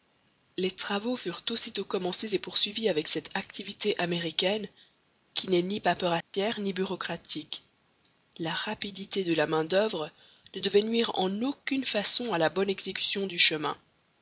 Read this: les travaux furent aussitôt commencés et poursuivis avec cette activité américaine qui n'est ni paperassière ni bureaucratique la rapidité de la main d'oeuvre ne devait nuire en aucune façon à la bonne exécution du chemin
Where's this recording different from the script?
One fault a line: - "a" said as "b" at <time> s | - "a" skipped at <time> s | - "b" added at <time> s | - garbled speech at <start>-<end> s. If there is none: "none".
none